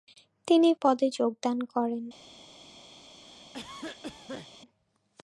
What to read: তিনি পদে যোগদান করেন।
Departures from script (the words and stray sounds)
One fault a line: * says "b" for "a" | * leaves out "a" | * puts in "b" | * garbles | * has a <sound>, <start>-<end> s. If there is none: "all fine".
* has a cough, 3.2-4.5 s